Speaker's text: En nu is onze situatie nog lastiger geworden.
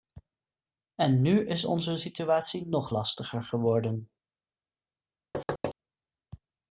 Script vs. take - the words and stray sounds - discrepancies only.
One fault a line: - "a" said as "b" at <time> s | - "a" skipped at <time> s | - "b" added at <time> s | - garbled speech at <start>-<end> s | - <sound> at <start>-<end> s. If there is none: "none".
- thud at 5.3-5.7 s